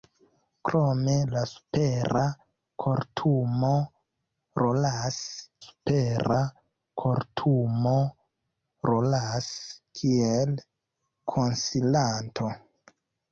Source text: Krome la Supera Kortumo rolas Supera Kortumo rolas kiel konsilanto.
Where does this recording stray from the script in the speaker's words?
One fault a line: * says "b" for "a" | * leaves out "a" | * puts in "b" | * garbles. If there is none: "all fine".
all fine